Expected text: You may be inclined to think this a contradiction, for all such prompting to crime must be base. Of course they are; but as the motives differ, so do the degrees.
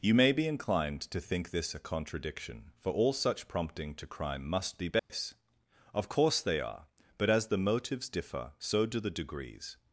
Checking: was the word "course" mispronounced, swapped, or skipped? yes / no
no